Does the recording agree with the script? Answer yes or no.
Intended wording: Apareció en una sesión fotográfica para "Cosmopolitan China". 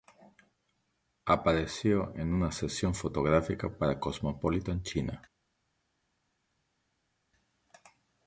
yes